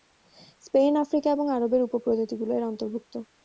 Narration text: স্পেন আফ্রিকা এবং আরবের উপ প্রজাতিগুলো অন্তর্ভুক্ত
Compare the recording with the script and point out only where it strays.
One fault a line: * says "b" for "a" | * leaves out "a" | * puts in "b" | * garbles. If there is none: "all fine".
* puts in "এর"